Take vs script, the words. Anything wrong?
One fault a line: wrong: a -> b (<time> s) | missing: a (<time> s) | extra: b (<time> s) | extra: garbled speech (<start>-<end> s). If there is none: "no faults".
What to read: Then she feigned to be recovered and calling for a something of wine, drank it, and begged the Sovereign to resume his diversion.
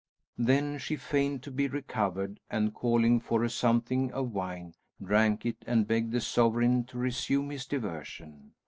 no faults